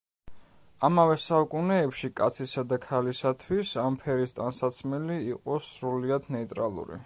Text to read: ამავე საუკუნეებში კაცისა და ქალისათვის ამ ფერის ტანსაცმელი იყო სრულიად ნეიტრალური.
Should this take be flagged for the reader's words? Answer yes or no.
no